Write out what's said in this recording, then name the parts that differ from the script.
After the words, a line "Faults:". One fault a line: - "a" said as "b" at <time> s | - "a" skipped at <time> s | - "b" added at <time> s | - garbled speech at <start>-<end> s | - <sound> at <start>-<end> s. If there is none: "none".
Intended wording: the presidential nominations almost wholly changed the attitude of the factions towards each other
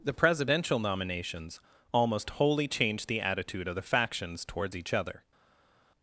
the presidential nominations almost wholly changed the attitude of the factions towards each other
Faults:
none